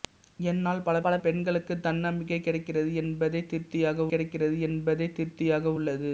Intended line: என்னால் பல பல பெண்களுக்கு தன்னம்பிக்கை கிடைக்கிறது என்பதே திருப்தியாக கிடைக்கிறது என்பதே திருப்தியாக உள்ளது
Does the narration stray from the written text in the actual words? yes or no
no